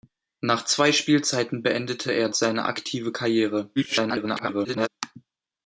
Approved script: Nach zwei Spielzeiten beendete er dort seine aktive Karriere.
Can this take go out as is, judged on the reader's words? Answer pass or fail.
fail